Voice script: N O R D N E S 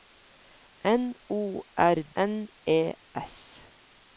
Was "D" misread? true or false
true